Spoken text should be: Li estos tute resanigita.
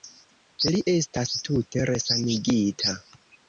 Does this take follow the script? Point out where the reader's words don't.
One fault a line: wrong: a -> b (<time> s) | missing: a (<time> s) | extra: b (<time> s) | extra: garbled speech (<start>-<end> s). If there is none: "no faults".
wrong: estos -> estas (0.9 s)